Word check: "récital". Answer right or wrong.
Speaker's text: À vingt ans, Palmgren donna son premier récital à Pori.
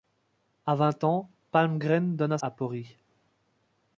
wrong